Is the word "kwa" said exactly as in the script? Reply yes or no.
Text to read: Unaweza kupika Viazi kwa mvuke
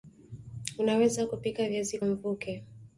no